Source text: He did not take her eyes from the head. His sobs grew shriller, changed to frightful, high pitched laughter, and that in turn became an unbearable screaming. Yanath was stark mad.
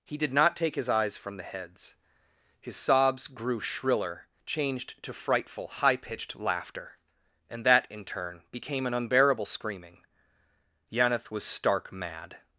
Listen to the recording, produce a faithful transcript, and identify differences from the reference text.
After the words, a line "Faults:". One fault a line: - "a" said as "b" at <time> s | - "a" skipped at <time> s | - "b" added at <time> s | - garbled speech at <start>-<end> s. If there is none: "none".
He did not take his eyes from the heads. His sobs grew shriller, changed to frightful, high pitched laughter, and that in turn became an unbearable screaming. Yanath was stark mad.
Faults:
- "her" said as "his" at 0.8 s
- "head" said as "heads" at 1.4 s